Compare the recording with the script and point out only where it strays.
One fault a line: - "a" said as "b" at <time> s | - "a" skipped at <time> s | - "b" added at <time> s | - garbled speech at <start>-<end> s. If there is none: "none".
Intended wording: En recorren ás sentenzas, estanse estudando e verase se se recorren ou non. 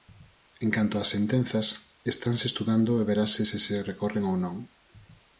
- "recorren" said as "canto" at 0.8 s